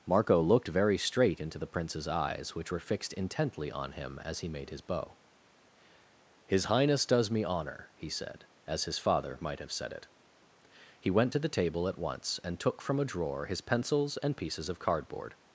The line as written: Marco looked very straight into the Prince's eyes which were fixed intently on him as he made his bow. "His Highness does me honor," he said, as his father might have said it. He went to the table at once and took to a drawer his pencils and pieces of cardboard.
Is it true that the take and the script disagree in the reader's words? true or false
true